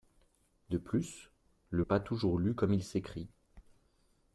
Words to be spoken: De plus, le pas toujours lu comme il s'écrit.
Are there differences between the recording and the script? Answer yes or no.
no